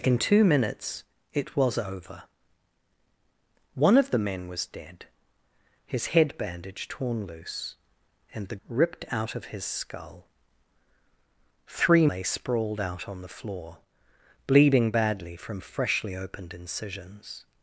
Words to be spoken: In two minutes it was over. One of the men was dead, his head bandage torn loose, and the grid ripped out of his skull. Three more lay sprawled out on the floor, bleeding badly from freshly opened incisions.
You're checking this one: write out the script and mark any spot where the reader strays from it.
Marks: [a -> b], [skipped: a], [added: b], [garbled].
In two minutes it was over. One of the men was dead, his head bandage torn loose, and the [skipped: grid] ripped out of his skull. Three [skipped: more] lay sprawled out on the floor, bleeding badly from freshly opened incisions.